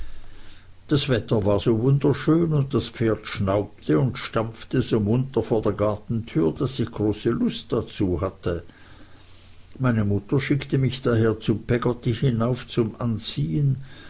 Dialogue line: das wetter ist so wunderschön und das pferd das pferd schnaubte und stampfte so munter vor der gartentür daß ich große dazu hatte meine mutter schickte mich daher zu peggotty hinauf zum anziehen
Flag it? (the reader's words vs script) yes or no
yes